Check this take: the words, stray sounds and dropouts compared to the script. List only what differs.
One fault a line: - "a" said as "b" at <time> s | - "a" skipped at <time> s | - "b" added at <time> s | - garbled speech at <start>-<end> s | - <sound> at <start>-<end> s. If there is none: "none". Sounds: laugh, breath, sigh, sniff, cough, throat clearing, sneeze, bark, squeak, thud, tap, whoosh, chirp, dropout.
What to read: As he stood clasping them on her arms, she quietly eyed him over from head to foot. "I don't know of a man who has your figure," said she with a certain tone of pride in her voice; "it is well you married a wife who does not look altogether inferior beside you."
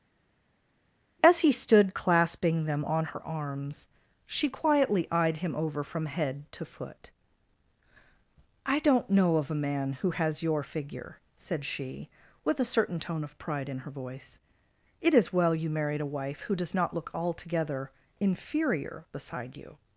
none